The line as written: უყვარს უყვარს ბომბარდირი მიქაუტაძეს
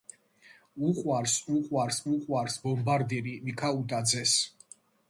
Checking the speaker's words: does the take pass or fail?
fail